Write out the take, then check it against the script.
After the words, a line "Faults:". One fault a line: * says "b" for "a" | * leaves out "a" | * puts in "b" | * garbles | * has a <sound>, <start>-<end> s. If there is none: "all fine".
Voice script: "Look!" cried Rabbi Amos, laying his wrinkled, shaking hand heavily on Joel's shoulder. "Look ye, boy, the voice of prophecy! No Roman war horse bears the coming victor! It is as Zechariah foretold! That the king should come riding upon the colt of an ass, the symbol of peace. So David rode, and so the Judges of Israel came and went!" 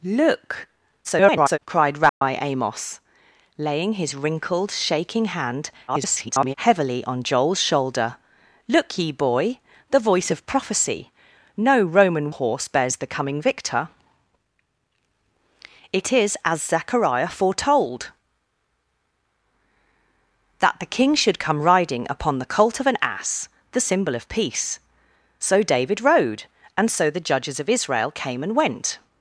"Look!" [garbled] cried Rabbi Amos, laying his wrinkled, shaking hand [garbled] heavily on Joel's shoulder. "Look ye, boy, the voice of prophecy! No Roman horse bears the coming victor! It is as Zechariah foretold! That the king should come riding upon the colt of an ass, the symbol of peace. So David rode, and so the Judges of Israel came and went!"
Faults:
* garbles
* has a dropout, 2.1-2.2 s
* garbles
* leaves out "war"